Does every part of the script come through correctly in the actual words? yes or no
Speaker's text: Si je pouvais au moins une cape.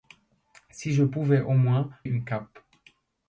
yes